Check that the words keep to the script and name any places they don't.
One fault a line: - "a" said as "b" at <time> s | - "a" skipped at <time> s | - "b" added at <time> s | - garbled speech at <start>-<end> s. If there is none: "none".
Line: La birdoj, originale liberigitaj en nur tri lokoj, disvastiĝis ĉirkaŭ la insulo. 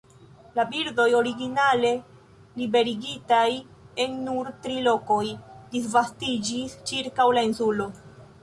none